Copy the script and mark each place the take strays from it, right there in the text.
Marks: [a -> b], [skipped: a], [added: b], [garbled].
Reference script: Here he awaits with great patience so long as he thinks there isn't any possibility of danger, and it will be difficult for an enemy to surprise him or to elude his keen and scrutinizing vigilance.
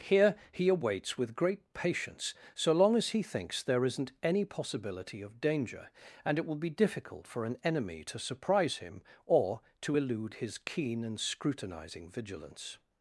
Here he awaits with great patience so long as he thinks there isn't any possibility of danger, and it will be difficult for an enemy to surprise him or to elude his keen and scrutinizing vigilance.